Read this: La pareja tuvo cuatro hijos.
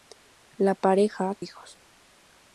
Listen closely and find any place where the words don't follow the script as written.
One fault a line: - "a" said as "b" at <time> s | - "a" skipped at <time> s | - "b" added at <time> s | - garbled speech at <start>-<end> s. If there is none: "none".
- "tuvo cuatro" skipped at 1.4 s